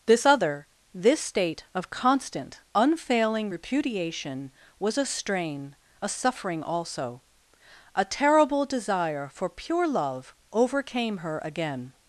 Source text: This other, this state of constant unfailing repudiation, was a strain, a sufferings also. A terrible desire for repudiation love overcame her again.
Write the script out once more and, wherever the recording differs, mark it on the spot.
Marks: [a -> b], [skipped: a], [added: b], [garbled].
This other, this state of constant unfailing repudiation, was a strain, a [sufferings -> suffering] also. A terrible desire for [repudiation -> pure] love overcame her again.